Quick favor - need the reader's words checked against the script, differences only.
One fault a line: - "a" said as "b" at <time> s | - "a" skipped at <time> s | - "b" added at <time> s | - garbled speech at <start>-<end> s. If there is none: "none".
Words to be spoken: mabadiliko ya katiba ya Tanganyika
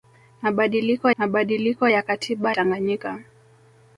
- "mabadiliko" added at 1.2 s
- "ya" skipped at 2.5 s